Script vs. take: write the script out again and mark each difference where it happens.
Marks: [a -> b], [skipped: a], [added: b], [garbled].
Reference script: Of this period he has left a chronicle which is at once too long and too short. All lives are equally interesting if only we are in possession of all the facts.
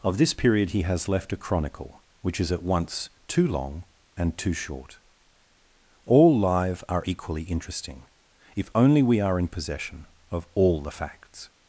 Of this period he has left a chronicle which is at once too long and too short. All [lives -> live] are equally interesting if only we are in possession of all the facts.